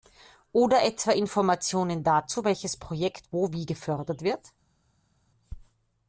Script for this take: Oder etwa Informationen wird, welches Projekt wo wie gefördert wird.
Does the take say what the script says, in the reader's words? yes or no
no